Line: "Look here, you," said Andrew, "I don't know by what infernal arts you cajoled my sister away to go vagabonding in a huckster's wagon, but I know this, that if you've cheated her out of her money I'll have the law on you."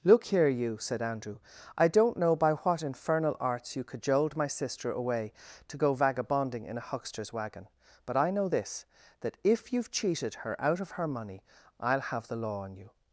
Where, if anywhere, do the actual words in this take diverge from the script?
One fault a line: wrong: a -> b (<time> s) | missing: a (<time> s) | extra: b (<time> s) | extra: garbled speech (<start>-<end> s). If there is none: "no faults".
no faults